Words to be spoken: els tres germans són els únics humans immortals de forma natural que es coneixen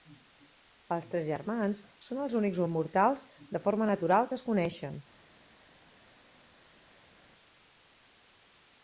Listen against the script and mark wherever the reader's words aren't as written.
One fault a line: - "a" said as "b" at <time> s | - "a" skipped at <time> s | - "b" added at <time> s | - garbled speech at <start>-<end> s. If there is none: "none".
- "humans" skipped at 2.6 s